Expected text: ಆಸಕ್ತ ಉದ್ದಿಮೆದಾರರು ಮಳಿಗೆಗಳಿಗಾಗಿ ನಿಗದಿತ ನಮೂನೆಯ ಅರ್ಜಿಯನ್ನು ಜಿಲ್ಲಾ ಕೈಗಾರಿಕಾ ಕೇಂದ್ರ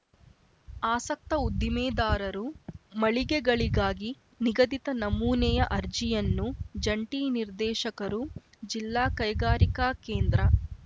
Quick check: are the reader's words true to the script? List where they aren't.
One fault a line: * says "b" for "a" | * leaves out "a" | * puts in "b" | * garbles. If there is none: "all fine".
* puts in "ಜಂಟಿ ನಿರ್ದೇಶಕರು"